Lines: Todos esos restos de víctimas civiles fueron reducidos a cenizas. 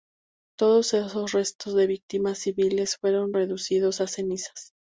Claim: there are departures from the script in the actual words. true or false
false